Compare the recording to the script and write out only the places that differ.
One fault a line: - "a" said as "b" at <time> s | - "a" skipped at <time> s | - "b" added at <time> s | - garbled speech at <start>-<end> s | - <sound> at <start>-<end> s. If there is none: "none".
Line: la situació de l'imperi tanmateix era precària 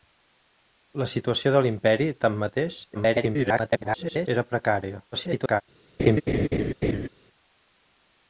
- garbled speech at 2.9-4.3 s
- garbled speech at 5.1-5.6 s
- laugh at 6.0-7.1 s